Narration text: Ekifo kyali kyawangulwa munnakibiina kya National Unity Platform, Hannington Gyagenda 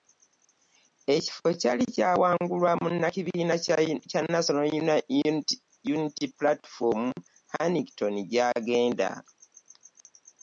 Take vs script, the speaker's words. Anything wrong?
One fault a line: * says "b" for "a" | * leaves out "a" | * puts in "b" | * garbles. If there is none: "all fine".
all fine